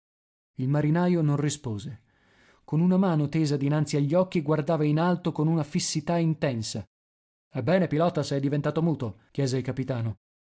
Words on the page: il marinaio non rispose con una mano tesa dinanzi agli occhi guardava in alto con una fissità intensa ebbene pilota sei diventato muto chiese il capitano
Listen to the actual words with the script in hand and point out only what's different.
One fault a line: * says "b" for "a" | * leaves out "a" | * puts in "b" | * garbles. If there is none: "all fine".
all fine